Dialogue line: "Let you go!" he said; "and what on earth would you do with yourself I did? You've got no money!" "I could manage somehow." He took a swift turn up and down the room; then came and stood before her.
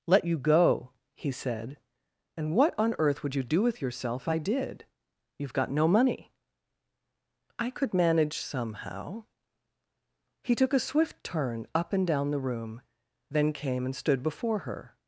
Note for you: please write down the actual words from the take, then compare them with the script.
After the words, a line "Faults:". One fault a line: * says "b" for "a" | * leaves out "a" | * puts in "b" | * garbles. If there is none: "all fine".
"Let you go!" he said; "and what on earth would you do with yourself I did? You've got no money!" "I could manage somehow." He took a swift turn up and down the room; then came and stood before her.
Faults:
all fine